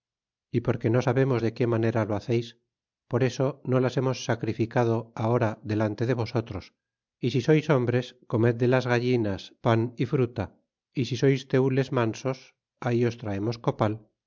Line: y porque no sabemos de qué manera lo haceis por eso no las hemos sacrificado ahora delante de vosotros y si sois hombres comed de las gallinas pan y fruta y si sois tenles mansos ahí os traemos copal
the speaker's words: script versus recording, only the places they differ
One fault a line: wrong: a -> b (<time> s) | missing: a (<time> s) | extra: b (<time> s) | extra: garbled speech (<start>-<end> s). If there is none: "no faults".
no faults